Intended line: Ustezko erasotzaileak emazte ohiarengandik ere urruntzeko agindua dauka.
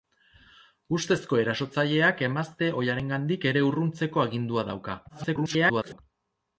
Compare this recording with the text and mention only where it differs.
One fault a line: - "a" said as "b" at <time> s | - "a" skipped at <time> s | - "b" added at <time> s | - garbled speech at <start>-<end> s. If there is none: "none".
- garbled speech at 5.1-6.0 s